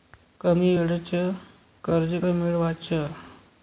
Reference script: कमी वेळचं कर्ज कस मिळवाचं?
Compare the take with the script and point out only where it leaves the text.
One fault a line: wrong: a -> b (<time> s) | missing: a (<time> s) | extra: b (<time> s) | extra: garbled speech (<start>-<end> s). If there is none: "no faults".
missing: कस (2.1 s)